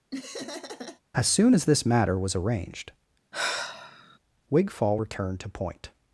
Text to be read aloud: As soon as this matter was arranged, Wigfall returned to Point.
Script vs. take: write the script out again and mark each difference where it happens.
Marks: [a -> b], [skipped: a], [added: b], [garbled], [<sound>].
[laugh] As soon as this matter was arranged, [sigh] Wigfall returned to Point.